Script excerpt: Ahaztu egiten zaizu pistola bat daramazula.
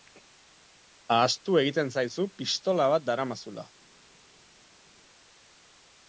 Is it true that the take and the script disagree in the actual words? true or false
false